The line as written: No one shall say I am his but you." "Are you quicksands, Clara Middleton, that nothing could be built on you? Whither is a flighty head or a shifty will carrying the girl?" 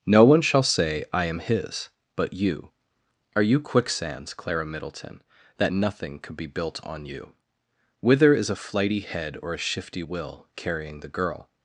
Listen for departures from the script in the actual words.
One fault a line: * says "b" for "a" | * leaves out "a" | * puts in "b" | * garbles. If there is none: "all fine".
all fine